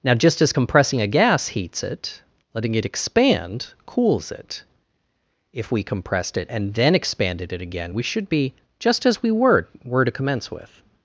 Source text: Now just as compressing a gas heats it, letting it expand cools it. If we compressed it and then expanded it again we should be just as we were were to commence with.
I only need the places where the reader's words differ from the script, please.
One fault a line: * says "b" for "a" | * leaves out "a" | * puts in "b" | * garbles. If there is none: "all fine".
all fine